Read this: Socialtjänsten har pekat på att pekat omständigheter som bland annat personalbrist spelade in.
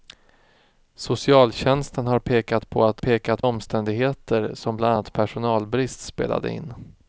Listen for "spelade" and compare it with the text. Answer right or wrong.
right